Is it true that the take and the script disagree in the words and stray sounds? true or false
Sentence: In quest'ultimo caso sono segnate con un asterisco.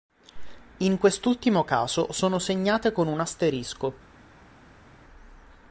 false